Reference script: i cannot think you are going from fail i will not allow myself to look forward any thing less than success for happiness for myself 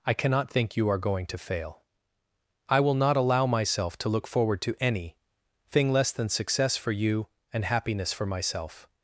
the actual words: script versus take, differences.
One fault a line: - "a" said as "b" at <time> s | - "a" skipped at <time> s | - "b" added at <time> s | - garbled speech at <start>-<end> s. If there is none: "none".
- "from" said as "to" at 1.3 s
- "to" added at 4.6 s
- "you and" added at 6.9 s